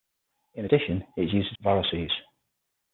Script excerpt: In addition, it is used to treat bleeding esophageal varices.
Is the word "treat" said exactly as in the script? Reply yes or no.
no